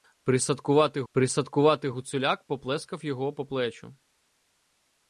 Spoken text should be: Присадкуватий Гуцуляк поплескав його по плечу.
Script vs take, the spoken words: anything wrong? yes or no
yes